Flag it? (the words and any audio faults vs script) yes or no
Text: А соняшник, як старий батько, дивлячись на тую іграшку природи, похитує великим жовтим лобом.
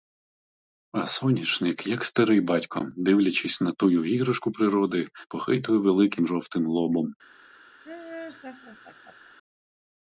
yes